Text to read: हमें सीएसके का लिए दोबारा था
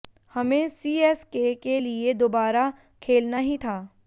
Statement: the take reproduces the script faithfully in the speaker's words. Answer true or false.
false